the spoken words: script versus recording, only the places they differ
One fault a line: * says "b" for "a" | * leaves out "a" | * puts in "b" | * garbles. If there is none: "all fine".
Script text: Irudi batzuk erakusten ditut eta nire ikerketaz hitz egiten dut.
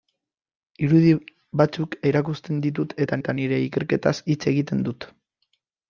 * puts in "eta"